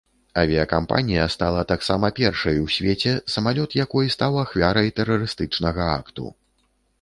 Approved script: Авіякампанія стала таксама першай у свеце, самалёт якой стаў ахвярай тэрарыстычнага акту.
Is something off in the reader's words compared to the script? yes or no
no